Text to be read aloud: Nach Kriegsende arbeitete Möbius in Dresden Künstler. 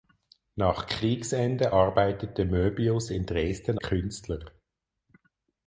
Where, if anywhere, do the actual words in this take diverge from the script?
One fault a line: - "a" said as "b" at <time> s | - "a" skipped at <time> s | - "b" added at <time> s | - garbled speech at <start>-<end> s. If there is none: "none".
none